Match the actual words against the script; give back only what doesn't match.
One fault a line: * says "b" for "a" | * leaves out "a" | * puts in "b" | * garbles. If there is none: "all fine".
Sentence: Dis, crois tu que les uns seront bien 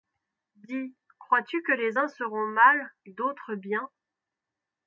* puts in "mal d'autres"